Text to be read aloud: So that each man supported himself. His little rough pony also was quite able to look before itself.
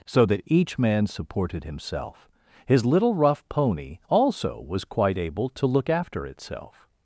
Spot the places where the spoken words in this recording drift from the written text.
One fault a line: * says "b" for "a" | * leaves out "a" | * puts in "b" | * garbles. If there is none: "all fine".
* says "after" for "before"